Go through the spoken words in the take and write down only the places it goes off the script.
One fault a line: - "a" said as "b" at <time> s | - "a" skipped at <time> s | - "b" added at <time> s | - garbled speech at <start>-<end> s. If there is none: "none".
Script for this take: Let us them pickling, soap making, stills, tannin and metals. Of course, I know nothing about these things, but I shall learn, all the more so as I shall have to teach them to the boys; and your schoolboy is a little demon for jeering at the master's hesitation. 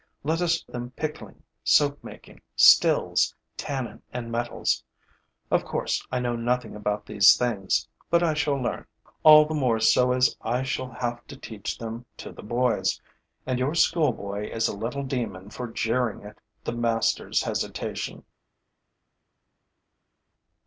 none